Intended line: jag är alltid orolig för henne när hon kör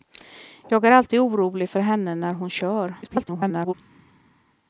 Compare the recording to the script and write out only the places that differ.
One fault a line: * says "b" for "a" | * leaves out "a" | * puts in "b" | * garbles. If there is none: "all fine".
* garbles